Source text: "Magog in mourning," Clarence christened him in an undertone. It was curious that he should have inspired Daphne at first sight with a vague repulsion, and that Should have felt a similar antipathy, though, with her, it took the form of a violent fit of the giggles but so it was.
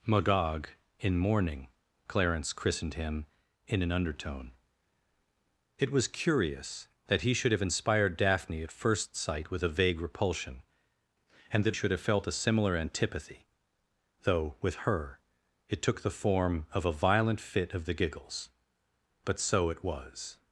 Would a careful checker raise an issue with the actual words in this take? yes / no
no